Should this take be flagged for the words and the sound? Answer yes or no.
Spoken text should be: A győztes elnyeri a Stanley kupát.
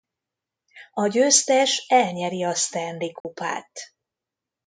yes